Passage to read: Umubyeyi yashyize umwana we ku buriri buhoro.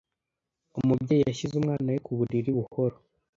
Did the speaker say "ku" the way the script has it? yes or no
yes